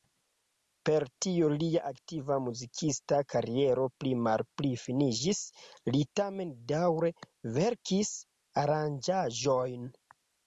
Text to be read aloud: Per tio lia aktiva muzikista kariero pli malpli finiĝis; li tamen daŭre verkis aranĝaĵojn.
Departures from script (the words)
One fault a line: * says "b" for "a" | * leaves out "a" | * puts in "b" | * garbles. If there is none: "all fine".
all fine